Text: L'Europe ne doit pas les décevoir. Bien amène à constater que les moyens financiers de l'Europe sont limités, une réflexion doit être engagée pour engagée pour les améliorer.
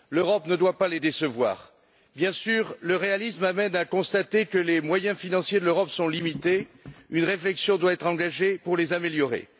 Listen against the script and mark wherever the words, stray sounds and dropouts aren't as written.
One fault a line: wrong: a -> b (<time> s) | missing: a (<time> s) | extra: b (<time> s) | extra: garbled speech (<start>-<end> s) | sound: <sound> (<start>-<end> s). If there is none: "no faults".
extra: sûr le réalisme (2.3 s)
missing: engagée pour (8.8 s)